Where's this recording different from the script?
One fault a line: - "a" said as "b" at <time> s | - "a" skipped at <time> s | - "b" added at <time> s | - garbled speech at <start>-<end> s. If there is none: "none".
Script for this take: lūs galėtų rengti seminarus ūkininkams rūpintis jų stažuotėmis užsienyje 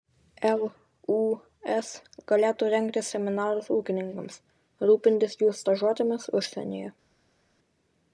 none